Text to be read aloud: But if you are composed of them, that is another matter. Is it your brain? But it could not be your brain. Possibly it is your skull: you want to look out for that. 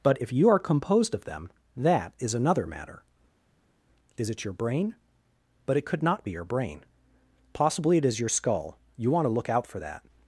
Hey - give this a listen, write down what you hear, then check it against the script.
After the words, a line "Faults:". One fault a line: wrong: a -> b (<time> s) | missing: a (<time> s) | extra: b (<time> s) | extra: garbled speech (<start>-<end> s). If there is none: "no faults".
But if you are composed of them, that is another matter. Is it your brain? But it could not be your brain. Possibly it is your skull: you want to look out for that.
Faults:
no faults